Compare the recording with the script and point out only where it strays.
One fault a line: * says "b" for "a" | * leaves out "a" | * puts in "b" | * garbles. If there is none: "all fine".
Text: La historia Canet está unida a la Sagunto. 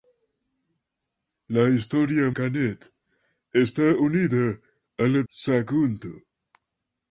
all fine